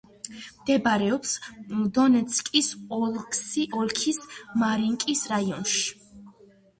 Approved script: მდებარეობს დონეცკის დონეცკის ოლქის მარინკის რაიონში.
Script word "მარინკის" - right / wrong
right